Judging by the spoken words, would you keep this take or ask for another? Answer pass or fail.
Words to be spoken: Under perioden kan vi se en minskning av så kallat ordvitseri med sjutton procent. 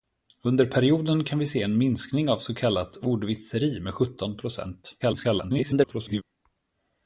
fail